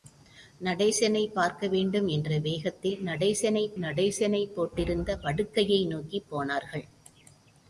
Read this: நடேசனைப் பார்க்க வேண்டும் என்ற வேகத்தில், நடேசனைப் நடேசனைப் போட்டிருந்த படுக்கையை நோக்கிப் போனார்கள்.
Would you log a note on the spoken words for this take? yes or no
no